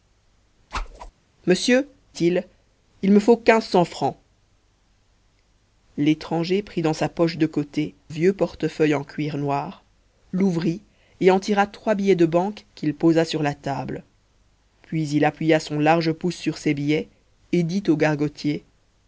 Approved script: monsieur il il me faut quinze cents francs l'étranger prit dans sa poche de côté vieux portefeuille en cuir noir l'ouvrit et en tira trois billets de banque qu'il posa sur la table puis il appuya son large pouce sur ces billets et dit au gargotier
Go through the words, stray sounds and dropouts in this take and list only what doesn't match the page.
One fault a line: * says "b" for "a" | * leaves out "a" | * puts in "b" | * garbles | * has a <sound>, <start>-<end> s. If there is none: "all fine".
* has a whoosh, 0.7-1.1 s